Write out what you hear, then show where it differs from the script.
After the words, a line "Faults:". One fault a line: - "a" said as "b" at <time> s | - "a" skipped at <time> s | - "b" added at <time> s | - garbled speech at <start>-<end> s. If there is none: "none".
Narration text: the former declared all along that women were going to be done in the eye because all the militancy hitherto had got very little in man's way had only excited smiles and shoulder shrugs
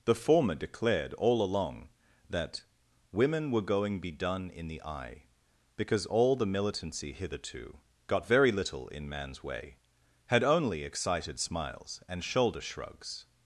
the former declared all along that women were going be done in the eye because all the militancy hitherto got very little in man's way had only excited smiles and shoulder shrugs
Faults:
- "to" skipped at 4.0 s
- "had" skipped at 7.8 s